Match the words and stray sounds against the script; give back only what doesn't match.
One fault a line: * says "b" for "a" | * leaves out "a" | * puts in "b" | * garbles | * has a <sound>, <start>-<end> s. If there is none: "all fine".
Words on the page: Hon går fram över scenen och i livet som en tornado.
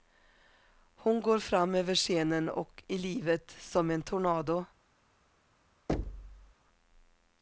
* has a thud, 5.9-6.5 s